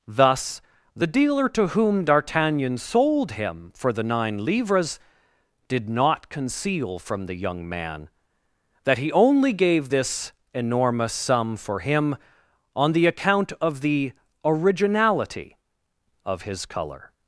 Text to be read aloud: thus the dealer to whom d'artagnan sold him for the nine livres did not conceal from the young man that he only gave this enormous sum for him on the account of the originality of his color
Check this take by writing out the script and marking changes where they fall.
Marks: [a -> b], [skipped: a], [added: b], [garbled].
thus the dealer to whom d'artagnan sold him for the nine livres did not conceal from the young man that he only gave this enormous sum for him on the account of the originality of his color